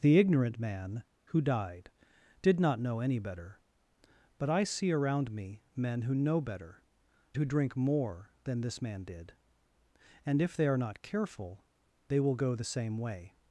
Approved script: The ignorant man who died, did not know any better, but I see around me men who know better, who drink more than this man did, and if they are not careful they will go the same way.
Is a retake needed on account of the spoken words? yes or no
no